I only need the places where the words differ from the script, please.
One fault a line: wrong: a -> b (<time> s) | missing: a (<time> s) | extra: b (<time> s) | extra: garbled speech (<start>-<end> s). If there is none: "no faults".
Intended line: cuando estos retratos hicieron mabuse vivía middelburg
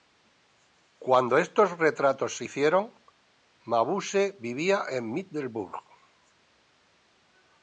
extra: se (2.4 s)
extra: en (4.9 s)